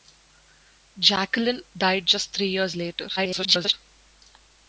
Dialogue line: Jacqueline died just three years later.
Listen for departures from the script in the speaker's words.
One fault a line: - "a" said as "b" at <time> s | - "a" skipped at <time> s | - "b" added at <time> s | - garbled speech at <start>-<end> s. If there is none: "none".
- garbled speech at 3.2-3.7 s